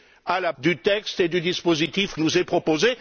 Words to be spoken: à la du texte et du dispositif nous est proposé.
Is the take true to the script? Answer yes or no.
yes